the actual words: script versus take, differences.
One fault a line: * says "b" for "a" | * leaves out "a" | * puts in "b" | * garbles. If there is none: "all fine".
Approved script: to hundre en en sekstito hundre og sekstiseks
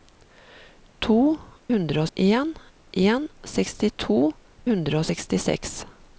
all fine